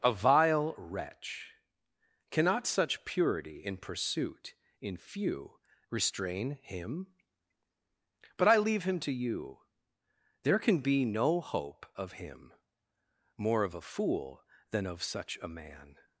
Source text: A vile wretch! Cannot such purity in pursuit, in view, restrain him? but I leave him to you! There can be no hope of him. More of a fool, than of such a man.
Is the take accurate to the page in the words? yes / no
no